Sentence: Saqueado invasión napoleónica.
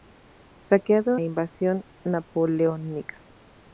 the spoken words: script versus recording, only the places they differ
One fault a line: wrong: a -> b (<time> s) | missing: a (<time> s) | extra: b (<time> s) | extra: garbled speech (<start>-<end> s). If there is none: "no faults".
no faults